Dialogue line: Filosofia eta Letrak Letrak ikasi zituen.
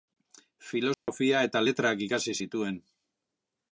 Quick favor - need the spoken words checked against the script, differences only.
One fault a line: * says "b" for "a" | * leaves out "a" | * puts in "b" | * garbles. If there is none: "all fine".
* leaves out "Letrak"